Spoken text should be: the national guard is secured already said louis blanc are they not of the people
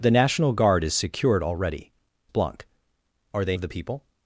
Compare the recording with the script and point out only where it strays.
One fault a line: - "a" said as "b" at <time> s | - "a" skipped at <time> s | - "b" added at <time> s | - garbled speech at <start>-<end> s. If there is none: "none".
- "said louis" skipped at 1.9 s
- "not" skipped at 3.6 s